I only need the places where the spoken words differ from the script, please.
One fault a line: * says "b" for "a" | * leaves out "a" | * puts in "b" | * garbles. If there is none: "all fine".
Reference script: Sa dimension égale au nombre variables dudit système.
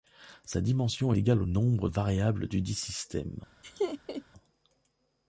all fine